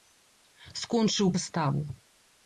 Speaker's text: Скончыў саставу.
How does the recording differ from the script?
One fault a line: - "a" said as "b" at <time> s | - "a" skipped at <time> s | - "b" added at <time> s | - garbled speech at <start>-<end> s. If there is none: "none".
none